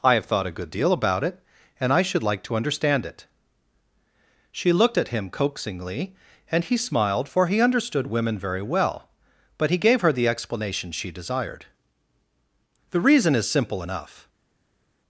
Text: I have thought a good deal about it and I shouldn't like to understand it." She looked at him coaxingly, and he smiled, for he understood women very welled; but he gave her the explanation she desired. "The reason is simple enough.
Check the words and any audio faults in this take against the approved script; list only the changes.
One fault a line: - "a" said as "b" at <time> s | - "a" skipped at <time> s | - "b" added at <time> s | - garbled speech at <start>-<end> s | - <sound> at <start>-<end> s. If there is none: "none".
- "shouldn't" said as "should" at 2.0 s
- "welled" said as "well" at 8.6 s